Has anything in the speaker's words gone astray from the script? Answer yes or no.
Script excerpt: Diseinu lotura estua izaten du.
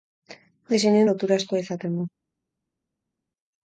no